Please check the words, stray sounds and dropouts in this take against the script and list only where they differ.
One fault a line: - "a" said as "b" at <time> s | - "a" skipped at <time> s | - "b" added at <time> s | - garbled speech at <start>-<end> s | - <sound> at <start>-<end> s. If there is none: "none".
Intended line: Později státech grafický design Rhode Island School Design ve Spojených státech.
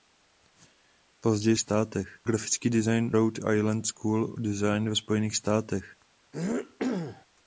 - throat clearing at 6.3-7.3 s